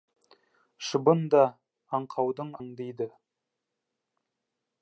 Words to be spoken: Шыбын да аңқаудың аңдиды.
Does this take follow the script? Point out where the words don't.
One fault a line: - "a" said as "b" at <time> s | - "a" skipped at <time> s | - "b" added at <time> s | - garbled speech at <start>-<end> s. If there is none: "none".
none